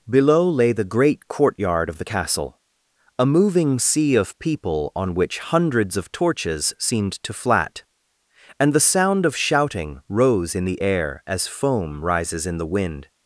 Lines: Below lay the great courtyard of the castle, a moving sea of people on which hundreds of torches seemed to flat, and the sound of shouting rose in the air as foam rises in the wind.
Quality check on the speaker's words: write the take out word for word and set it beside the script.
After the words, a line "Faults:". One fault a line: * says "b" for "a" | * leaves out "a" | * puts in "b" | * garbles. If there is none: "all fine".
Below lay the great courtyard of the castle, a moving sea of people on which hundreds of torches seemed to flat, and the sound of shouting rose in the air as foam rises in the wind.
Faults:
all fine